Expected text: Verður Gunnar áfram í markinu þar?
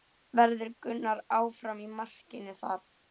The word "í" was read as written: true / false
true